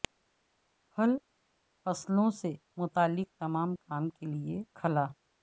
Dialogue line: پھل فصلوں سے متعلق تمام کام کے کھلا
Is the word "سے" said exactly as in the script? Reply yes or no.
yes